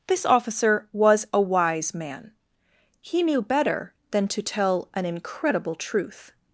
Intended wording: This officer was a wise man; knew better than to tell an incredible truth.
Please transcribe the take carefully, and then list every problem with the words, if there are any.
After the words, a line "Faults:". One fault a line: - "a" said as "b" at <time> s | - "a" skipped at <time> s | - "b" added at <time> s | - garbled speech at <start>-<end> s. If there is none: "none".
This officer was a wise man; he knew better than to tell an incredible truth.
Faults:
- "he" added at 3.0 s